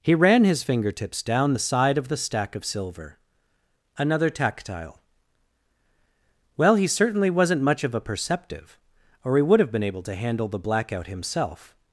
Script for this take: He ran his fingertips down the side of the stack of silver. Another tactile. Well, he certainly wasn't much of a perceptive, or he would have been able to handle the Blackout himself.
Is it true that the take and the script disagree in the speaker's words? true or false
false